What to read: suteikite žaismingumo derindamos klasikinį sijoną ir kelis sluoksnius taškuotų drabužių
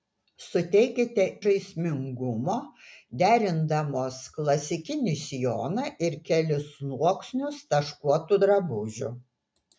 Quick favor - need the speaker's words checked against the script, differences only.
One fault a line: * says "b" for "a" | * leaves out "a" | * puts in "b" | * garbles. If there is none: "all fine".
all fine